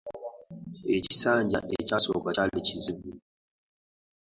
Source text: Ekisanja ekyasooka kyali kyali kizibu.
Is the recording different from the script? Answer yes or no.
yes